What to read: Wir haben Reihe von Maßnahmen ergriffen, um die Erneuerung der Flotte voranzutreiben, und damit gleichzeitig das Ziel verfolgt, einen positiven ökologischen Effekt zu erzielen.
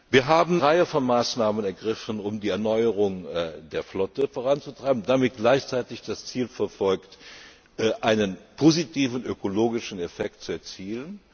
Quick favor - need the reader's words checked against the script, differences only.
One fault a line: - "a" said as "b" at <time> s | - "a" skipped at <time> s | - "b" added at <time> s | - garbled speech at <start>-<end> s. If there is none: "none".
none